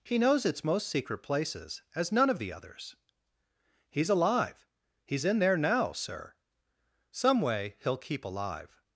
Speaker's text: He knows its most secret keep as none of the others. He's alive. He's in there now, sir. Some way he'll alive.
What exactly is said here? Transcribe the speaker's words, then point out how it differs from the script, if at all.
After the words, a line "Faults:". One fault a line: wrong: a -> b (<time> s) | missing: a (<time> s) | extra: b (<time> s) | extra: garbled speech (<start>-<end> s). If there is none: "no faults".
He knows its most secret places as none of the others. He's alive. He's in there now, sir. Some way he'll keep alive.
Faults:
wrong: keep -> places (1.2 s)
extra: keep (8.0 s)